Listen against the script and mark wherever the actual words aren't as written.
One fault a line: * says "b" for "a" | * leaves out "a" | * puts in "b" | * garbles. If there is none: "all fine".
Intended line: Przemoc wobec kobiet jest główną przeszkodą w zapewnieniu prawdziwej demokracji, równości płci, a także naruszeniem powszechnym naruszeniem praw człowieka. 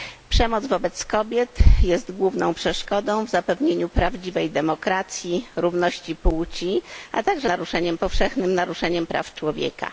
all fine